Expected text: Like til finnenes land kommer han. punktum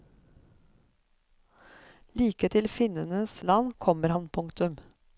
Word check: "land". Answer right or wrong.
right